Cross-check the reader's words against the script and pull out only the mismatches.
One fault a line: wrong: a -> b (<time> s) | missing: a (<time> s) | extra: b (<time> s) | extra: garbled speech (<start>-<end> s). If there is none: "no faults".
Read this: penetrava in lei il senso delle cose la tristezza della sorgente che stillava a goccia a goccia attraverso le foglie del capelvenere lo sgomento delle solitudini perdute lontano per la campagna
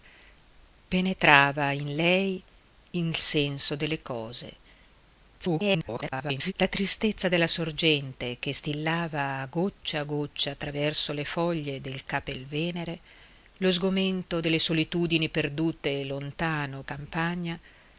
extra: garbled speech (5.4-6.5 s)
missing: per la (16.8 s)